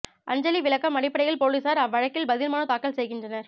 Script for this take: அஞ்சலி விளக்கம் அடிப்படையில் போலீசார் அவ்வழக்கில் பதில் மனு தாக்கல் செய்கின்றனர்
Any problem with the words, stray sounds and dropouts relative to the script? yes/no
no